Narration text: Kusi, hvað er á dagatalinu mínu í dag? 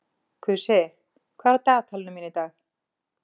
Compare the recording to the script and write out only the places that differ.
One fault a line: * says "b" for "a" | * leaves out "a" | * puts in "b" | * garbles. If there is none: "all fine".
all fine